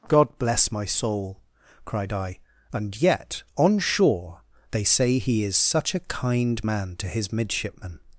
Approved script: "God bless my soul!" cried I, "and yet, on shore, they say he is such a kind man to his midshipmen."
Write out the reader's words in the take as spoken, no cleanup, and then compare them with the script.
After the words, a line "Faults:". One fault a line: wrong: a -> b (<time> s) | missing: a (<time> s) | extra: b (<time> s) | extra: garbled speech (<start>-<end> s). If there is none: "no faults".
"God bless my soul!" cried I, "and yet, on shore, they say he is such a kind man to his midshipmen."
Faults:
no faults